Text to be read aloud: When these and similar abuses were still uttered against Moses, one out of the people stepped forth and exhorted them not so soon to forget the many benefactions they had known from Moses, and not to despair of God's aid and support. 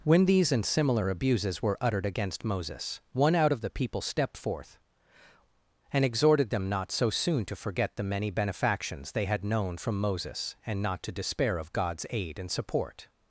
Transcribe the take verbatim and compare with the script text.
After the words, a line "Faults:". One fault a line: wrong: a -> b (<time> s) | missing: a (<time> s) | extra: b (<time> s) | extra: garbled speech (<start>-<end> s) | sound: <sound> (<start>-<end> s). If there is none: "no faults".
When these and similar abuses were uttered against Moses, one out of the people stepped forth and exhorted them not so soon to forget the many benefactions they had known from Moses, and not to despair of God's aid and support.
Faults:
missing: still (1.8 s)